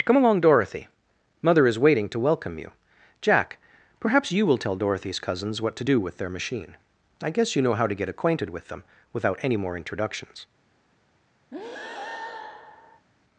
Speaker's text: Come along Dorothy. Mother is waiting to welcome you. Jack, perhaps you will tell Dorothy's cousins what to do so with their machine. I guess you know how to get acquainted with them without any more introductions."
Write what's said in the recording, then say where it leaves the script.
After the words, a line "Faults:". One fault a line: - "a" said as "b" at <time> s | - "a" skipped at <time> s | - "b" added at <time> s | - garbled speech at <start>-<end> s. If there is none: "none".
Come along Dorothy. Mother is waiting to welcome you. Jack, perhaps you will tell Dorothy's cousins what to do with their machine. I guess you know how to get acquainted with them without any more introductions."
Faults:
- "so" skipped at 6.0 s